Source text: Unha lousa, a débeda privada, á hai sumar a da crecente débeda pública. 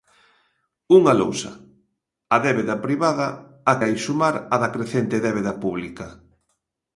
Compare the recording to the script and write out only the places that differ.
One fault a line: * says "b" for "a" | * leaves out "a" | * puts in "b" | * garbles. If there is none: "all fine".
all fine